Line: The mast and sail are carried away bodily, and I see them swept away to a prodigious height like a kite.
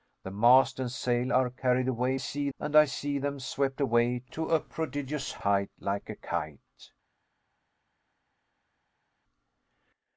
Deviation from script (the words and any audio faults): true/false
true